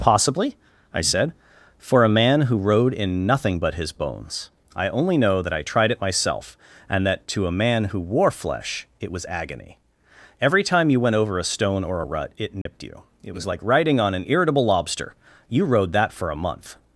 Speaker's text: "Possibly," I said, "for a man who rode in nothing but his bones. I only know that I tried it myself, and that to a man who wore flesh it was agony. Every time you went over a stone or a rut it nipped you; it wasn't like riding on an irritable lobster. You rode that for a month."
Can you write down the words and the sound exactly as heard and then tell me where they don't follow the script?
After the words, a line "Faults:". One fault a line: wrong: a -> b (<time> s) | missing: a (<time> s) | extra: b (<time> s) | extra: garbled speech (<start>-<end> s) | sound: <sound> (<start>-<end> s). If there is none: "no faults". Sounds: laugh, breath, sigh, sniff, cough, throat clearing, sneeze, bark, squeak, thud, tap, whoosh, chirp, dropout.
"Possibly," I said, "for a man who rode in nothing but his bones. I only know that I tried it myself, and that to a man who wore flesh it was agony. Every time you went over a stone or a rut it nipped you; it was like riding on an irritable lobster. You rode that for a month."
Faults:
sound: dropout (12.6-12.7 s)
wrong: wasn't -> was (13.3 s)